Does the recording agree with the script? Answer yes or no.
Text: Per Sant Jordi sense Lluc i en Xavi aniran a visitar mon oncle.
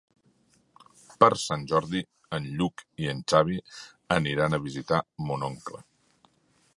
no